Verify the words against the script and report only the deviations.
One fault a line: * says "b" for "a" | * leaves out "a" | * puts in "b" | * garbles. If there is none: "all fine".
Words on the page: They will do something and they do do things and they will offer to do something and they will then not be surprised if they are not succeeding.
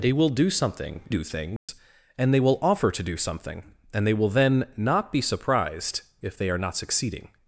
* leaves out "and they do"